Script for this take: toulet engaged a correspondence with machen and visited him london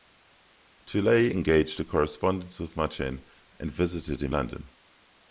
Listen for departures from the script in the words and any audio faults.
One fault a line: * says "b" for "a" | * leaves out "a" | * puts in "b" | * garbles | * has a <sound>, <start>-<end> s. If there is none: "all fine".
all fine